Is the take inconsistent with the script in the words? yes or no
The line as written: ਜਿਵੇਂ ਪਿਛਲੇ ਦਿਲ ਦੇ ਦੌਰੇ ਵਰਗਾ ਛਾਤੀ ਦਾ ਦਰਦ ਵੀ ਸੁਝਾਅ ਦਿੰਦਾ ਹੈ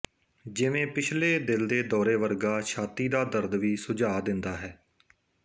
no